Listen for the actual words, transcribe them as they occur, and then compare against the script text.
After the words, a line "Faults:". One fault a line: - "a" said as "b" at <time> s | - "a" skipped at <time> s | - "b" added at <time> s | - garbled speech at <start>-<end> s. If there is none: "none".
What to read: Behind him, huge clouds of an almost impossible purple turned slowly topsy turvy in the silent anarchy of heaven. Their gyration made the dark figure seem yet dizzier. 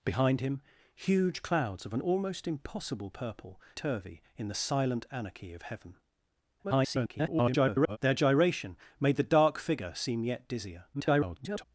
Behind him, huge clouds of an almost impossible purple turvy in the silent anarchy of heaven. [garbled] Their gyration made the dark figure seem yet dizzier. [garbled]
Faults:
- "turned slowly topsy" skipped at 3.6 s
- garbled speech at 6.6-8.0 s
- garbled speech at 10.9-11.6 s